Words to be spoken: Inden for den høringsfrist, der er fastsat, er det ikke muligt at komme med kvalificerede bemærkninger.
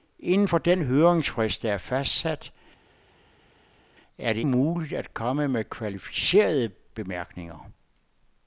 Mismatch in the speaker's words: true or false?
true